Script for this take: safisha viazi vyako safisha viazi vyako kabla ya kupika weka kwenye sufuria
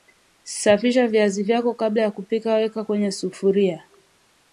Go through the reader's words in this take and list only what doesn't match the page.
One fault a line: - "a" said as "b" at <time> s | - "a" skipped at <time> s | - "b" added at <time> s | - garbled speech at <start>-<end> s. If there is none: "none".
- "safisha viazi vyako" skipped at 1.7 s